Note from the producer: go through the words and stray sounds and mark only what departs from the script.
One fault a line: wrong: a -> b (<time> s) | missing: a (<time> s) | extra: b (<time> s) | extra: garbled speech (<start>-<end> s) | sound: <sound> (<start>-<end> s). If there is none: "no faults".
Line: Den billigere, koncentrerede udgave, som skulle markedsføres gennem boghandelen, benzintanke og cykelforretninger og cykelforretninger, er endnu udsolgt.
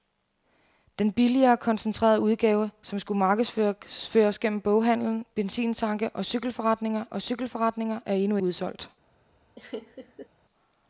sound: laugh (9.6-10.3 s)